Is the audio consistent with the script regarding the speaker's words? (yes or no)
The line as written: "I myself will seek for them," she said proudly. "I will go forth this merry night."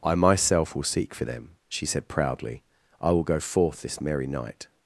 yes